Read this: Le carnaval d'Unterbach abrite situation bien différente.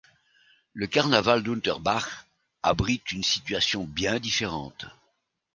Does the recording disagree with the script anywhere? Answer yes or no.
yes